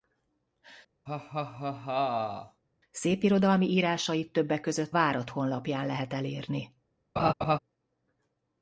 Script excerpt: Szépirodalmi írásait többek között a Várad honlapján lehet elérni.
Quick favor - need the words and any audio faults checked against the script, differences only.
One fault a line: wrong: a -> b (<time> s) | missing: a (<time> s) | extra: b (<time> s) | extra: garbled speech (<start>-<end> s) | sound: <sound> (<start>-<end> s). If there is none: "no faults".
sound: laugh (1.1-2.6 s)
missing: a (5.0 s)
sound: laugh (7.2-7.6 s)